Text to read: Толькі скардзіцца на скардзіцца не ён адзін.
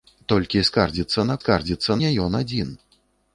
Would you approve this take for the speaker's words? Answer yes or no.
yes